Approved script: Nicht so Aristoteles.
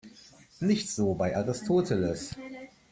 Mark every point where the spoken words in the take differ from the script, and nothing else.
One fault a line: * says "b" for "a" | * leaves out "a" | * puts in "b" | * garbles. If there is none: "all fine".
* puts in "bei"